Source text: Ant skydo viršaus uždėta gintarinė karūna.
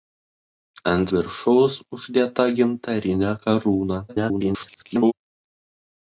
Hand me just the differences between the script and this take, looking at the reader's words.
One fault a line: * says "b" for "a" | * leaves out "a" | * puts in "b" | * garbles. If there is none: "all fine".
* leaves out "skydo"
* garbles